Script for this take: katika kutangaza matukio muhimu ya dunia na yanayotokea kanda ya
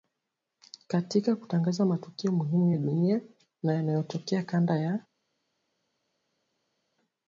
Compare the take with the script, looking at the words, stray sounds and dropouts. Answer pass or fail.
pass